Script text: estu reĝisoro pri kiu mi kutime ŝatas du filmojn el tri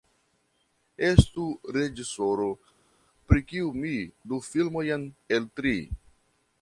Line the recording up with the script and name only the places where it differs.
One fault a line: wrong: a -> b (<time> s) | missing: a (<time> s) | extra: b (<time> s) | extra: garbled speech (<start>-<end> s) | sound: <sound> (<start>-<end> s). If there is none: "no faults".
missing: kutime ŝatas (3.9 s)